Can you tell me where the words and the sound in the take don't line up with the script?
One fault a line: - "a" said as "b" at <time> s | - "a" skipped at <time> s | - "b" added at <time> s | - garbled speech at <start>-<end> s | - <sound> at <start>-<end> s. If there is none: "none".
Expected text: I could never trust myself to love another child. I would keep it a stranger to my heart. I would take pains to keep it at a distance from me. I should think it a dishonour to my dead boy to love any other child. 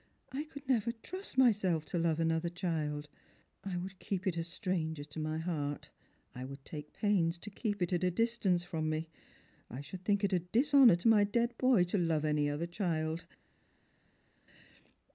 none